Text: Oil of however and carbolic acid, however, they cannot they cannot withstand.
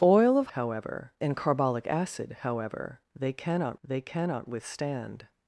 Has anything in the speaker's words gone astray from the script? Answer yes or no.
no